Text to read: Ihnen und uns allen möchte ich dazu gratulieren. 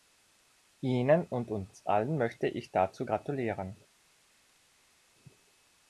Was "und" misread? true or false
false